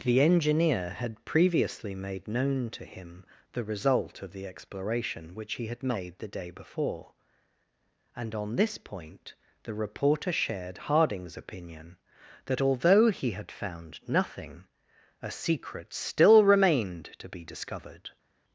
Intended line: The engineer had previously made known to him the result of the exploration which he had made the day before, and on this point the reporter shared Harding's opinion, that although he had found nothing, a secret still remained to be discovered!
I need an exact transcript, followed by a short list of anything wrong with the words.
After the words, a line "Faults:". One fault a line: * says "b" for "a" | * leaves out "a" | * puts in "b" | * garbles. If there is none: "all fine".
The engineer had previously made known to him the result of the exploration which he had made the day before, and on this point the reporter shared Harding's opinion, that although he had found nothing, a secret still remained to be discovered!
Faults:
all fine